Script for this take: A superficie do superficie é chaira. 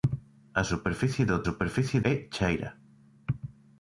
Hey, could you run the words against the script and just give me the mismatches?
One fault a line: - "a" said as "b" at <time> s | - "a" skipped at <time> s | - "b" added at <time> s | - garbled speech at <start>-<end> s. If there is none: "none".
none